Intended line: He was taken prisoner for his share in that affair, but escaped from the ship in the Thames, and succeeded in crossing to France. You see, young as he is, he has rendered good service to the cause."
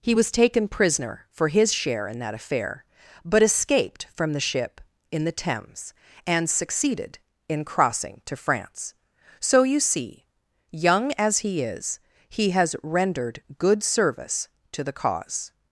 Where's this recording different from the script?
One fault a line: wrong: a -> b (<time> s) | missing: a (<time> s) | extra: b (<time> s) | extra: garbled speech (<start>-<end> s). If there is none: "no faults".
extra: So (9.4 s)